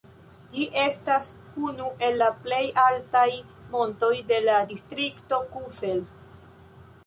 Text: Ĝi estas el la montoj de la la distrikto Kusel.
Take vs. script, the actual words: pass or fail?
fail